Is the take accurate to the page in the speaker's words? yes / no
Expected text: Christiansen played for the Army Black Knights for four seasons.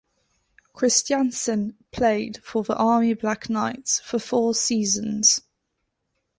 yes